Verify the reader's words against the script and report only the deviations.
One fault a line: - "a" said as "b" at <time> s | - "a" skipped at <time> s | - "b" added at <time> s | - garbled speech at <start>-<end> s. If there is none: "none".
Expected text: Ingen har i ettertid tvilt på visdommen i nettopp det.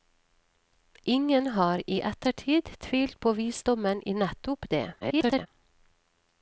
- garbled speech at 5.0-5.5 s